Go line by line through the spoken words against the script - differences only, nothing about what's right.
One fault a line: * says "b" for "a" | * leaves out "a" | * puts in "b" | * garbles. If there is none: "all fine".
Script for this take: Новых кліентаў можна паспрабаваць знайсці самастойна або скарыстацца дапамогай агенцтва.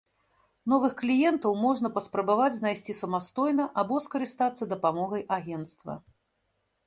all fine